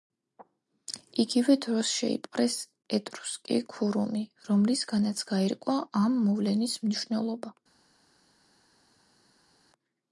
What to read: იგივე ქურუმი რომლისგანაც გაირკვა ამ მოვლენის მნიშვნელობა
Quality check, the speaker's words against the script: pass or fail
fail